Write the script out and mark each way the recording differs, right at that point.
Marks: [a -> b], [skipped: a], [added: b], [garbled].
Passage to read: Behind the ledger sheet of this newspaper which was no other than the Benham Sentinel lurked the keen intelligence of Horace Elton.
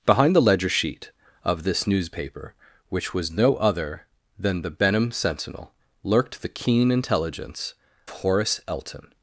Behind the ledger sheet of this newspaper which was no other than the Benham Sentinel lurked the keen intelligence [skipped: of] Horace Elton.